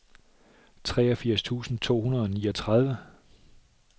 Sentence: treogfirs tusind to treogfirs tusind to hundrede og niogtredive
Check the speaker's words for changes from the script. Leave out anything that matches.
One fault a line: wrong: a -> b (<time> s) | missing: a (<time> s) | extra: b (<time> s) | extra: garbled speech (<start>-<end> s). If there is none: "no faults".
missing: treogfirs tusind to (2.0 s)